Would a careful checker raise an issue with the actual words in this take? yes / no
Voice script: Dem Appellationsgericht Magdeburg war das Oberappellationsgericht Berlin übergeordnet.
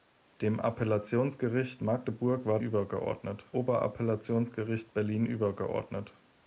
yes